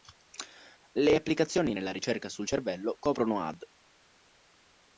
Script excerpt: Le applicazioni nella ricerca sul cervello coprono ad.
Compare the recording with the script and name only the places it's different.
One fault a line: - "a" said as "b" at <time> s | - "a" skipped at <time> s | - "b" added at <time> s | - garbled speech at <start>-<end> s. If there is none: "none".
none